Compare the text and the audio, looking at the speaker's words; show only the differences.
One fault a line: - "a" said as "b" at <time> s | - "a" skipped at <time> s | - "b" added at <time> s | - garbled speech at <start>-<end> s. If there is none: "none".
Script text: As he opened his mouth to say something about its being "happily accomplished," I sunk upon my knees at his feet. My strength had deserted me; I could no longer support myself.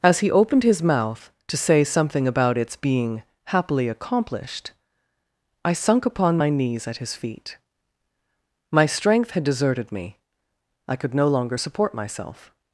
none